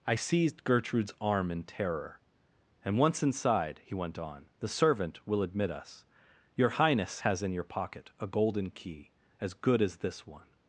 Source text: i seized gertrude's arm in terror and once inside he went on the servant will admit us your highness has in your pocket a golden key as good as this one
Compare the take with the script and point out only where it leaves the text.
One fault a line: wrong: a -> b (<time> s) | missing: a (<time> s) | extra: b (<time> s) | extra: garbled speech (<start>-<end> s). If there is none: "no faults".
no faults